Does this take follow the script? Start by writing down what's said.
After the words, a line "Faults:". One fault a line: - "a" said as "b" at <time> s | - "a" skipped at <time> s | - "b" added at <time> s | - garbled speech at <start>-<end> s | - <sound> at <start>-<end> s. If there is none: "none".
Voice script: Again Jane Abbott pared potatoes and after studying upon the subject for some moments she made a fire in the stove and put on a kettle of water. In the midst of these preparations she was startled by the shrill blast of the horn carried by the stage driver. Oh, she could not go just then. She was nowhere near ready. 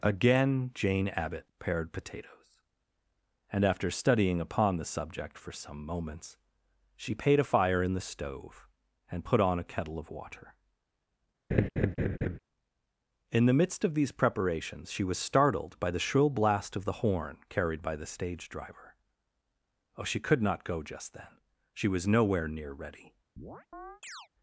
Again Jane Abbott pared potatoes and after studying upon the subject for some moments she paid a fire in the stove and put on a kettle of water. In the midst of these preparations she was startled by the shrill blast of the horn carried by the stage driver. Oh, she could not go just then. She was nowhere near ready.
Faults:
- "made" said as "paid" at 7.1 s
- laugh at 11.5-12.4 s
- chirp at 23.4-24.3 s